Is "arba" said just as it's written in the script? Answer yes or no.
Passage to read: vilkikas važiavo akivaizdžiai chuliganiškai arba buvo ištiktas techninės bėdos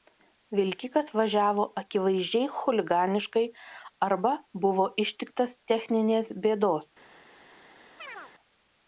yes